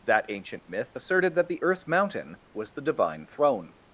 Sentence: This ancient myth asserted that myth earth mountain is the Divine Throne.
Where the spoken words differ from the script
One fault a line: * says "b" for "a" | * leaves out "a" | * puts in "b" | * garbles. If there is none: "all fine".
* says "That" for "This"
* says "the" for "myth"
* says "was" for "is"